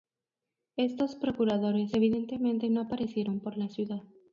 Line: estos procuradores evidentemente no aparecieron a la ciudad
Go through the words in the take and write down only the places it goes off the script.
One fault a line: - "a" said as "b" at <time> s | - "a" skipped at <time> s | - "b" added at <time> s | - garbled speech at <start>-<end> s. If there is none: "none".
- "a" said as "por" at 3.4 s